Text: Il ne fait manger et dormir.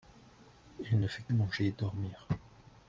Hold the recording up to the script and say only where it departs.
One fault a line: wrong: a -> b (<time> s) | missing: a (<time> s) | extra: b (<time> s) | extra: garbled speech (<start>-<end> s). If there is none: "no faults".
no faults